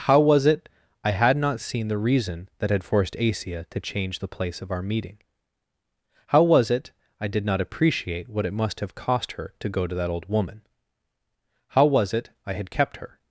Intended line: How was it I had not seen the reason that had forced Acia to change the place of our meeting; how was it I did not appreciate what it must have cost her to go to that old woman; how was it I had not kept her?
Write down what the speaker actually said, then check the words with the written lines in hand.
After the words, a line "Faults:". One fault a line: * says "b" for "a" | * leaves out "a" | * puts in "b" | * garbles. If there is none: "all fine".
How was it I had not seen the reason that had forced Acia to change the place of our meeting; how was it I did not appreciate what it must have cost her to go to that old woman; how was it I had kept her?
Faults:
* leaves out "not"